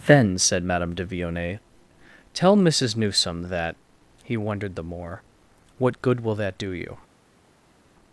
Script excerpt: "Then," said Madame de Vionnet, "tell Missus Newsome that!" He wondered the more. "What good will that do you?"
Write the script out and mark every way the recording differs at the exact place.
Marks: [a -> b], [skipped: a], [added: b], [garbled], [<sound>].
"Then," said Madame de Vionnet, "tell Missus Newsome that!" He wondered the more. "What good will that do you?"